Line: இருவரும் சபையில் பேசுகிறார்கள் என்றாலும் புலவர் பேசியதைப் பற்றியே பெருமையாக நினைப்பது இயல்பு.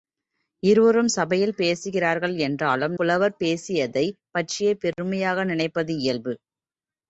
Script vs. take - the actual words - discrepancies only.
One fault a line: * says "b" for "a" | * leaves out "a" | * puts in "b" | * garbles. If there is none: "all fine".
all fine